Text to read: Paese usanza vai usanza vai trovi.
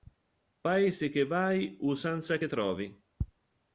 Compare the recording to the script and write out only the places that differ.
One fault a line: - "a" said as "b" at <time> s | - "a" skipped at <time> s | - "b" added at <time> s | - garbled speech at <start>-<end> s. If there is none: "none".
- "usanza" said as "che" at 1.1 s
- "vai" said as "che" at 2.4 s